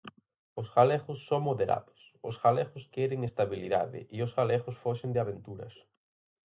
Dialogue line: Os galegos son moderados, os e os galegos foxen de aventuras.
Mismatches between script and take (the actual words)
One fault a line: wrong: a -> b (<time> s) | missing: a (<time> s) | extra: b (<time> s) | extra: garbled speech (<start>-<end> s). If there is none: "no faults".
extra: galegos queren estabilidade (2.4 s)